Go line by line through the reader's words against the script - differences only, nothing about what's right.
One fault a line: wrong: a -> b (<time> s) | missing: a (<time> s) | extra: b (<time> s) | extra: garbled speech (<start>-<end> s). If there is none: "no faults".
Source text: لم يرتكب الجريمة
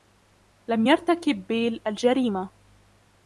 extra: بيل (1.5 s)